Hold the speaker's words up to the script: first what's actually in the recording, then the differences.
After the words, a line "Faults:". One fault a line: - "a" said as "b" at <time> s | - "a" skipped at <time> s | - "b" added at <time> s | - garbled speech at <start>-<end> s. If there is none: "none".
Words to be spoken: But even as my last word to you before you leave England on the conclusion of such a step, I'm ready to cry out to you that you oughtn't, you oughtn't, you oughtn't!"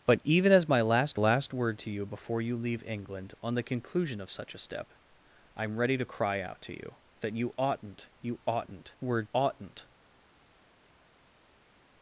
But even as my last last word to you before you leave England on the conclusion of such a step, I'm ready to cry out to you that you oughtn't, you oughtn't, word oughtn't!"
Faults:
- "last" added at 1.1 s
- "you" said as "word" at 9.0 s